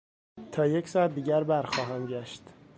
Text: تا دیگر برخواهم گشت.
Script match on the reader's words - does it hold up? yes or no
no